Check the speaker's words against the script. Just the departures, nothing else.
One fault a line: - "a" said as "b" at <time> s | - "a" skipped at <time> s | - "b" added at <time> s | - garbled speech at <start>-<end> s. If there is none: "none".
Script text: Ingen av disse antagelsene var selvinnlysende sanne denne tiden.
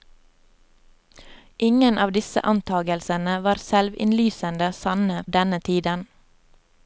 none